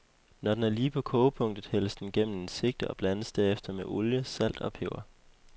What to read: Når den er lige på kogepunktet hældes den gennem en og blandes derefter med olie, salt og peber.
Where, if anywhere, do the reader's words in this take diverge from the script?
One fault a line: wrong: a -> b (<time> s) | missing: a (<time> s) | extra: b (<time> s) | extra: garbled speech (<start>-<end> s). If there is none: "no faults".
extra: sigte (2.5 s)